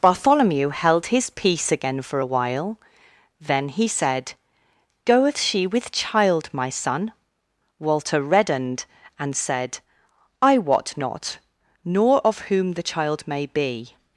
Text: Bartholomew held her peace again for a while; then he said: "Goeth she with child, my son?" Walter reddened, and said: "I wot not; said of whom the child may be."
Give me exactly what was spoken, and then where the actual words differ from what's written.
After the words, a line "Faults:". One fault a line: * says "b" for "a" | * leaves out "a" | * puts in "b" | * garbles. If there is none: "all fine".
Bartholomew held his peace again for a while; then he said: "Goeth she with child, my son?" Walter reddened, and said: "I wot not; nor of whom the child may be."
Faults:
* says "his" for "her"
* says "nor" for "said"